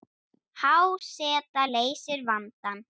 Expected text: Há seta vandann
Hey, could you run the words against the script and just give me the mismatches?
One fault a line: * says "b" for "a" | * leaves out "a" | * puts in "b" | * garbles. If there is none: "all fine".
* puts in "leysir"